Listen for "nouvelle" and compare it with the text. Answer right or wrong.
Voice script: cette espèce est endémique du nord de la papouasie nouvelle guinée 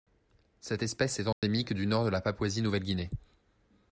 right